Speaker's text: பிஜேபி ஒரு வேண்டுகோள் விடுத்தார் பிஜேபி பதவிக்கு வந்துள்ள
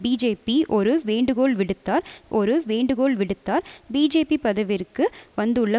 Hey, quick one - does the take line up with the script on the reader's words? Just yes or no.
no